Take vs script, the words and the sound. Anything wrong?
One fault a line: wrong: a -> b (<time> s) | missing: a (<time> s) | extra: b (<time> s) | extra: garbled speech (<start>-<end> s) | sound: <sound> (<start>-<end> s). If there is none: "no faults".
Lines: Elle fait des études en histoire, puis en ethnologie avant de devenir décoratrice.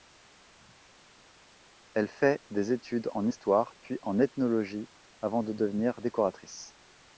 no faults